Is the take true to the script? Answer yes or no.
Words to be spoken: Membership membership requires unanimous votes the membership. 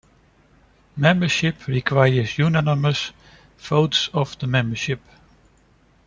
no